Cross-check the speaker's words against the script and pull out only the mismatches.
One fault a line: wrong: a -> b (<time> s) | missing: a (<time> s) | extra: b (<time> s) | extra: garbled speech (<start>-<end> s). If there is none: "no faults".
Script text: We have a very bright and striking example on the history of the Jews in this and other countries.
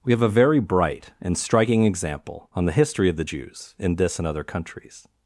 no faults